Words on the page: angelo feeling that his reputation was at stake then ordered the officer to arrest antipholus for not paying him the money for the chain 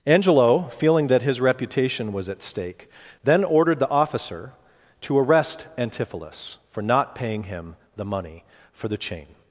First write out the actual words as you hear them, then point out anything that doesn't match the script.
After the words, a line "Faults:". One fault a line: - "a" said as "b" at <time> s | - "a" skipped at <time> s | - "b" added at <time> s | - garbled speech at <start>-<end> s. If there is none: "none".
angelo feeling that his reputation was at stake then ordered the officer to arrest antipholus for not paying him the money for the chain
Faults:
none